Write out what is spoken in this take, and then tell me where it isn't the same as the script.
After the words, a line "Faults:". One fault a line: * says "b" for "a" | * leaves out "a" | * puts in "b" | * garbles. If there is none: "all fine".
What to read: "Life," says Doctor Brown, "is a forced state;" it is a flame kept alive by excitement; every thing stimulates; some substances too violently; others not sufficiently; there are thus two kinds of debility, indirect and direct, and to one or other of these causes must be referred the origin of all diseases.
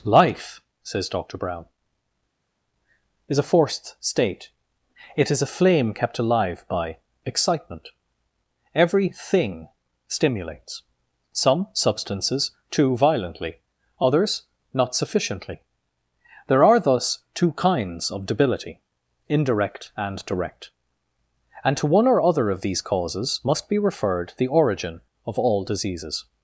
"Life," says Doctor Brown, "is a forced state;" it is a flame kept alive by excitement; every thing stimulates; some substances too violently; others not sufficiently; there are thus two kinds of debility, indirect and direct, and to one or other of these causes must be referred the origin of all diseases.
Faults:
all fine